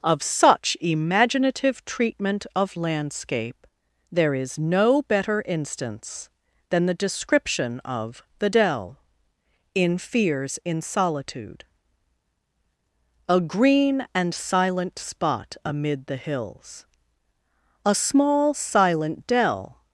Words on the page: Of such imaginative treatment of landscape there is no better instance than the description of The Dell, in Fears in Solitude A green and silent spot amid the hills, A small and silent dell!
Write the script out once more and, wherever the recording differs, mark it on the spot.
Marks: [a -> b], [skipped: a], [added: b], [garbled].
Of such imaginative treatment of landscape there is no better instance than the description of The Dell, in Fears in Solitude A green and silent spot amid the hills, A small [skipped: and] silent dell!